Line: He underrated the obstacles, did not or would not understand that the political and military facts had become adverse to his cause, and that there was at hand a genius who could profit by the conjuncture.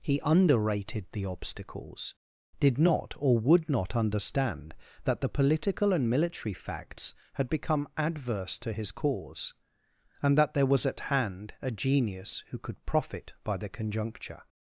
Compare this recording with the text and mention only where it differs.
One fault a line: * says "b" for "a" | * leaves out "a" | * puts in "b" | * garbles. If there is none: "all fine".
all fine